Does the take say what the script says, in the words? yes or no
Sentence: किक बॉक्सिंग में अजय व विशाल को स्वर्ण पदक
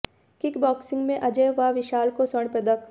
yes